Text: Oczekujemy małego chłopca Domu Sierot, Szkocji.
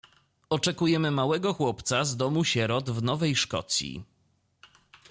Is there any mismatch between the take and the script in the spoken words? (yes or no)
yes